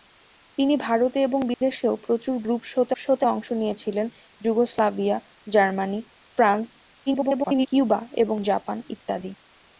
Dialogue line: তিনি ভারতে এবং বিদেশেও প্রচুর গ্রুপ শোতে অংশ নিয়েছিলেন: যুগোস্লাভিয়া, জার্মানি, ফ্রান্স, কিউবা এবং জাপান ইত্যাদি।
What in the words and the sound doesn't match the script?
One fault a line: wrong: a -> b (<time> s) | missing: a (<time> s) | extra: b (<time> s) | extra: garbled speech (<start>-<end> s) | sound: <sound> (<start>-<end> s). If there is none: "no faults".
sound: dropout (1.5-1.6 s)
extra: শোতে (3.0 s)
extra: garbled speech (7.1-7.7 s)